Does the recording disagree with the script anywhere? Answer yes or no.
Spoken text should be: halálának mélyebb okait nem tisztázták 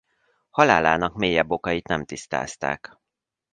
no